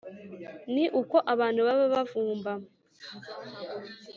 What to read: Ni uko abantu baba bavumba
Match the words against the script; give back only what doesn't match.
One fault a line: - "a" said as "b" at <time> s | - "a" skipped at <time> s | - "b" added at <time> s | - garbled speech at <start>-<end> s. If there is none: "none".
none